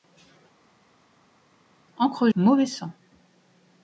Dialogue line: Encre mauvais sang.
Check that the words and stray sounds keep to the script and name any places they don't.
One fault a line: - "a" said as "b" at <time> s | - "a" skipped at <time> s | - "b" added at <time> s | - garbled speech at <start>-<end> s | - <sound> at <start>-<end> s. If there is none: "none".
none